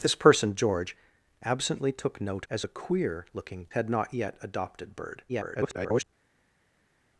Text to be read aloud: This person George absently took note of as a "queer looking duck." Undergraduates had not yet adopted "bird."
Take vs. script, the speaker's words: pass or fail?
fail